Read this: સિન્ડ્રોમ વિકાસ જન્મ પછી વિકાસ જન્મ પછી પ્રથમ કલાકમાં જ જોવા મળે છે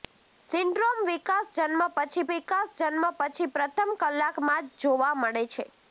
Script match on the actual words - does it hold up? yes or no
yes